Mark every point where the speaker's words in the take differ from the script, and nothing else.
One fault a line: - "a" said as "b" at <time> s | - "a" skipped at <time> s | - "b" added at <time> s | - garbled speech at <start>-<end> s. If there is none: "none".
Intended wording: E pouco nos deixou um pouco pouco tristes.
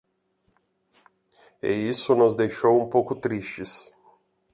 - "pouco" said as "isso" at 1.7 s
- "pouco" skipped at 3.2 s